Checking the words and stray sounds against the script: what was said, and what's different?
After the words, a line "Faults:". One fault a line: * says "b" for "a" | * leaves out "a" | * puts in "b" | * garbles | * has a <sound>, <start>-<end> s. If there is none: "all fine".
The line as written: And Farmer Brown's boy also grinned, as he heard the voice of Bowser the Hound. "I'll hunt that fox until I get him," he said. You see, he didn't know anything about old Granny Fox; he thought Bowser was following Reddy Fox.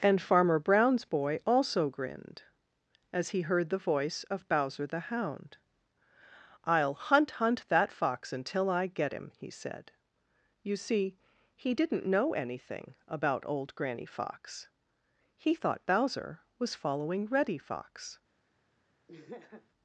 And Farmer Brown's boy also grinned, as he heard the voice of Bowser the Hound. "I'll hunt hunt that fox until I get him," he said. You see, he didn't know anything about old Granny Fox; he thought Bowser was following Reddy Fox.
Faults:
* puts in "hunt"
* has a laugh, 19.1-19.7 s